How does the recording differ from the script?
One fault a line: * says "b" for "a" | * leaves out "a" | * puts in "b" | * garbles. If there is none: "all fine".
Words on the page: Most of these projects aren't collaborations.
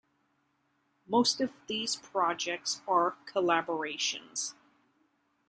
* says "are" for "aren't"